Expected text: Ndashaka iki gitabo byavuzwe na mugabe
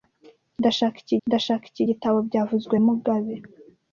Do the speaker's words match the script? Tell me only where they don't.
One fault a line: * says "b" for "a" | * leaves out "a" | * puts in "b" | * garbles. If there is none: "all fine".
* puts in "ndashaka iki"
* leaves out "na"